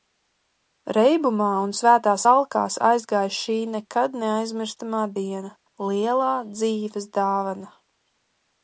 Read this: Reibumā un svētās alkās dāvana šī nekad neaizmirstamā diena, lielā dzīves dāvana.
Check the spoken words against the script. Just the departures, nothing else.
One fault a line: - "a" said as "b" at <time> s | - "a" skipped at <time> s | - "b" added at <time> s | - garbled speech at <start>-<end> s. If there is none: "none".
- "dāvana" said as "aizgāja" at 2.9 s